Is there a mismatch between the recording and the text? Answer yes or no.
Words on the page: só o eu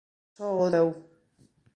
no